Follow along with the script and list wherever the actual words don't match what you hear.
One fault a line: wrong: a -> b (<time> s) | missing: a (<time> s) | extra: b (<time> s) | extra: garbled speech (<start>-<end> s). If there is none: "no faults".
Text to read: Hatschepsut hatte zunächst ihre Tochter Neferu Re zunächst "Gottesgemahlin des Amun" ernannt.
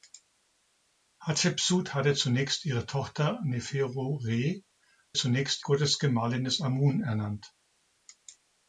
no faults